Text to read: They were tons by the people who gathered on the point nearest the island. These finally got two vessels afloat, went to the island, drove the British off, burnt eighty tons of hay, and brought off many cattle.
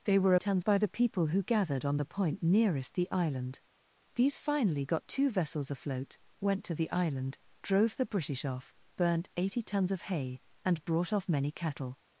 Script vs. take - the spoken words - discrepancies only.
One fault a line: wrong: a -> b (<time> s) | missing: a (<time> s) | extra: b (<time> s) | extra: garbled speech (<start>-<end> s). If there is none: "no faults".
no faults